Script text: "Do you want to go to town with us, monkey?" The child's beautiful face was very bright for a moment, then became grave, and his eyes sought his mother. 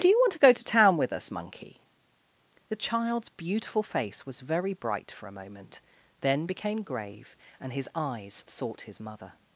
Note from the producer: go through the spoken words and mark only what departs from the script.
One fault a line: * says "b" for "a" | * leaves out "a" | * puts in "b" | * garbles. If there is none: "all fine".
all fine